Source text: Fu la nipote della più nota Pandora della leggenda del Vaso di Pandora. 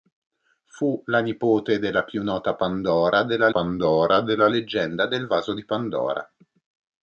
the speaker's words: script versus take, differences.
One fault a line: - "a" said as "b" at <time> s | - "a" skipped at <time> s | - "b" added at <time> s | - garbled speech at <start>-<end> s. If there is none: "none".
- "Pandora della" added at 3.5 s